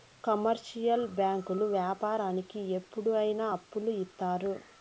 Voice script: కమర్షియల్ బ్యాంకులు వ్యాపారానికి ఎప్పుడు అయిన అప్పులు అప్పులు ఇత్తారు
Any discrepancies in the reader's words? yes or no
yes